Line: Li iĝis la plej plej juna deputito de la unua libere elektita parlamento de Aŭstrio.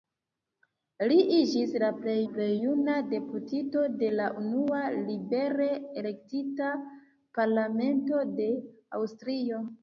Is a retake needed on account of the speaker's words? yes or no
no